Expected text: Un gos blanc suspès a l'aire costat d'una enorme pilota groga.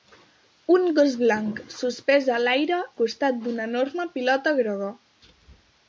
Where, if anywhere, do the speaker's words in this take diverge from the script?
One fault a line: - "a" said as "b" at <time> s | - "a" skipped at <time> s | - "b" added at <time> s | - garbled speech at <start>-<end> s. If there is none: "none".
none